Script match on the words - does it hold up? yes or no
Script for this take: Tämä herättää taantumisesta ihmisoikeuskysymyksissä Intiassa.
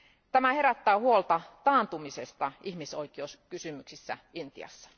no